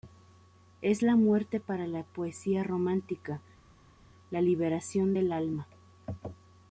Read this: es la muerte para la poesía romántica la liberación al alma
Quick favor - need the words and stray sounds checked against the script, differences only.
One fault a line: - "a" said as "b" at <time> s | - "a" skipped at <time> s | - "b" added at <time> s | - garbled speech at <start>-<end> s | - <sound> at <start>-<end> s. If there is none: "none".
- "al" said as "del" at 5.1 s